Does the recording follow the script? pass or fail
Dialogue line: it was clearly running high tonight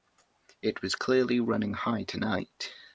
pass